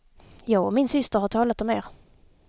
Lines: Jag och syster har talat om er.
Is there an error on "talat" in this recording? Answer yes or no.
no